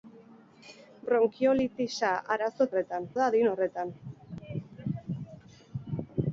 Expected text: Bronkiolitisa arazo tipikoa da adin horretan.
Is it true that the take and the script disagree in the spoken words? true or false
true